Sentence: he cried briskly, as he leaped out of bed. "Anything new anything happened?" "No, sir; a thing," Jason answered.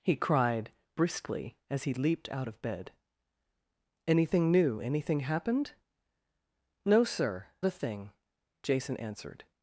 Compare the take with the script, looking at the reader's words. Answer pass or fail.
pass